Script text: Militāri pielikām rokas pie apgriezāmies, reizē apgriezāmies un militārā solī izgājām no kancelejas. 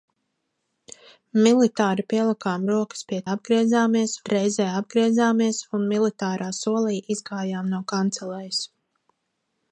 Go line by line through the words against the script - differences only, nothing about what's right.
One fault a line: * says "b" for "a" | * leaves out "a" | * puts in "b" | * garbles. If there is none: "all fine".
all fine